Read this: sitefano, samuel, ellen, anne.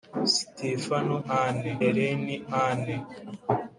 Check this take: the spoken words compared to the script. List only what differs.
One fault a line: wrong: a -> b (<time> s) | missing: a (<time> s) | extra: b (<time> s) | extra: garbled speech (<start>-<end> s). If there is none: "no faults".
wrong: samuel -> anne (1.3 s)